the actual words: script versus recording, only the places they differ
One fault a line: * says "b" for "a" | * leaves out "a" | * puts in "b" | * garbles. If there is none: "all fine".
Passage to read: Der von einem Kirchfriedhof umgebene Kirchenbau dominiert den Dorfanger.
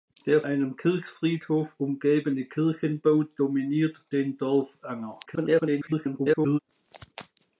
* leaves out "von"
* garbles